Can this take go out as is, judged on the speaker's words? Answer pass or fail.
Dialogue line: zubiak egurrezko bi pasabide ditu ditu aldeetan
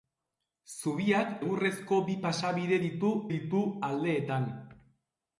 pass